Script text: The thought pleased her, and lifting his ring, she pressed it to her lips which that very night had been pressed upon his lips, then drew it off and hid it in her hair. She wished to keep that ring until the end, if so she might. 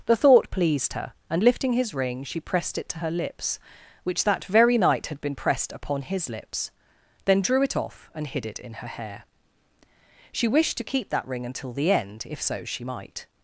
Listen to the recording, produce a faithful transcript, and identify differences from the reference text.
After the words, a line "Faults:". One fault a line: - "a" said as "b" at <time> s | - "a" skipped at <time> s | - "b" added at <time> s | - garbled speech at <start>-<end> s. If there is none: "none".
The thought pleased her, and lifting his ring, she pressed it to her lips which that very night had been pressed upon his lips, then drew it off and hid it in her hair. She wished to keep that ring until the end, if so she might.
Faults:
none